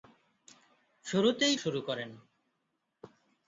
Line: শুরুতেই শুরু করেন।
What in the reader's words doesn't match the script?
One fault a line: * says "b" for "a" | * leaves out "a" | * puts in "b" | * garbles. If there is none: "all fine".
all fine